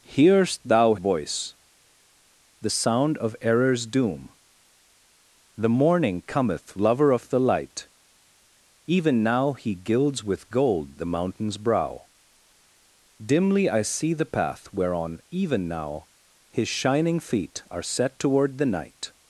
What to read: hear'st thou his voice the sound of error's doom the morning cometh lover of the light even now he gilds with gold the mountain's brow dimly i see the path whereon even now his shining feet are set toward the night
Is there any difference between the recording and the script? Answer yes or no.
yes